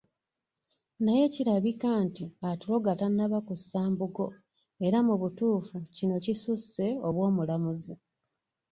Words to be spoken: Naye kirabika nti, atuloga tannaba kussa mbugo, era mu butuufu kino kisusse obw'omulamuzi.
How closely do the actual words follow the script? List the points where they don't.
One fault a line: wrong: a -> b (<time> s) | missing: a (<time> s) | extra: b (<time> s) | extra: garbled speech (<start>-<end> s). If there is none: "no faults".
no faults